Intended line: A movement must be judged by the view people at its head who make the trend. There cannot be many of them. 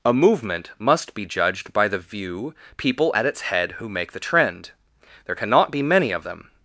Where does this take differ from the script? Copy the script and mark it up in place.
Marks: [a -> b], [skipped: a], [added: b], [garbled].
A movement must be judged by the view people at its head who make the trend. There cannot be many of them.